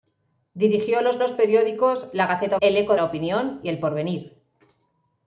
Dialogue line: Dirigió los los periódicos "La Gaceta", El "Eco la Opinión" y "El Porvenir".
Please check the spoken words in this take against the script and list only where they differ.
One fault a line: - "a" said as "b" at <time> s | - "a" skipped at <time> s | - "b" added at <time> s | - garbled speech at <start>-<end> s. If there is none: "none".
none